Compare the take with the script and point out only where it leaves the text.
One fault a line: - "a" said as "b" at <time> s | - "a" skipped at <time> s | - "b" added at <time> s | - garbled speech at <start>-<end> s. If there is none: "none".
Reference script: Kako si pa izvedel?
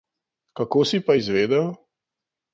none